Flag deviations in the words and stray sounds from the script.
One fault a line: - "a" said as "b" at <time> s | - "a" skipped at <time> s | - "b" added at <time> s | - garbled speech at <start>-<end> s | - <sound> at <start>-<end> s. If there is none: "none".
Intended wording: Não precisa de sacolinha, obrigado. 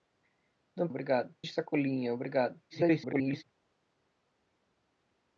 - "precisa" said as "obrigado" at 0.9 s
- garbled speech at 2.7-3.4 s